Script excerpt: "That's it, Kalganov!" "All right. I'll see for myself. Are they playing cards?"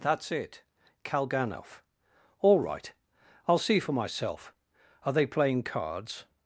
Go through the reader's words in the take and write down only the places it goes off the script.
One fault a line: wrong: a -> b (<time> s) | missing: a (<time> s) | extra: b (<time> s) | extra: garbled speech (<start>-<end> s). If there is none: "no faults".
no faults